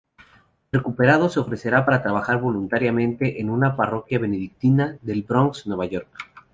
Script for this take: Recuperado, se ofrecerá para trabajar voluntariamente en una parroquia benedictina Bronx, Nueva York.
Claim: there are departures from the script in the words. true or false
true